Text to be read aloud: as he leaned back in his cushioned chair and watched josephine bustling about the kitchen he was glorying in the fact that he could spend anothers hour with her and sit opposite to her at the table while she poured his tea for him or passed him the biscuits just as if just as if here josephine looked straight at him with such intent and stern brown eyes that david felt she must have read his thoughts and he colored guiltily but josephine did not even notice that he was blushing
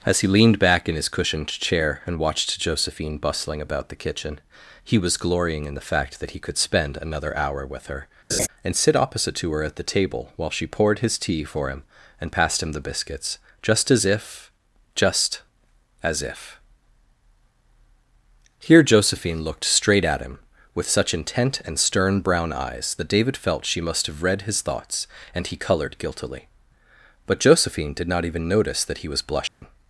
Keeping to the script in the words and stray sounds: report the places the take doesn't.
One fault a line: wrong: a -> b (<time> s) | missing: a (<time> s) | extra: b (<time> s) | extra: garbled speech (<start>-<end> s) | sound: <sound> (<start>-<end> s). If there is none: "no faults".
wrong: anothers -> another (7.0 s)
sound: laugh (8.3-8.5 s)
wrong: or -> and (12.2 s)
sound: dropout (29.5-29.6 s)